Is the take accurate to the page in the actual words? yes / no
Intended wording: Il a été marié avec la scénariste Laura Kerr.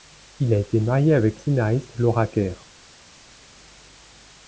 no